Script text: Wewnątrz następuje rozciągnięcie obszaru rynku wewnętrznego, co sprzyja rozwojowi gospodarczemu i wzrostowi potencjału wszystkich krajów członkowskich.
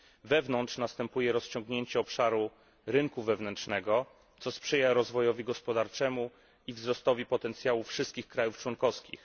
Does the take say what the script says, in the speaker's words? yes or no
yes